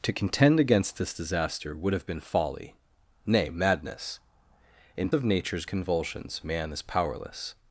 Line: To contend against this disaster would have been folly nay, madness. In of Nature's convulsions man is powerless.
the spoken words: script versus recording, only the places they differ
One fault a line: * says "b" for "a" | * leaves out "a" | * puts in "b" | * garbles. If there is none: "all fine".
all fine